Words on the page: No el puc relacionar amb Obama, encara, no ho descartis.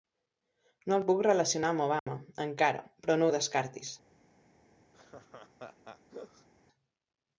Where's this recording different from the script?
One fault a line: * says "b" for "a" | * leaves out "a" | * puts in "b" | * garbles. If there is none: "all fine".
* puts in "però"